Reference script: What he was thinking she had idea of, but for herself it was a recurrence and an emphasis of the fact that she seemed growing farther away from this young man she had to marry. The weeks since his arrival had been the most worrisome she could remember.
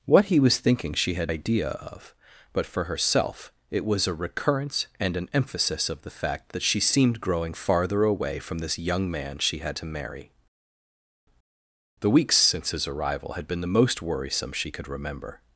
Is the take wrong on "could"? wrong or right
right